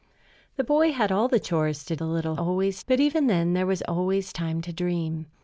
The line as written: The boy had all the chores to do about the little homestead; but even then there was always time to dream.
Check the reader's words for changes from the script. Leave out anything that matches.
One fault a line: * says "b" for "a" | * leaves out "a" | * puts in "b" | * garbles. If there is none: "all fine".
* leaves out "do about"
* says "always" for "homestead"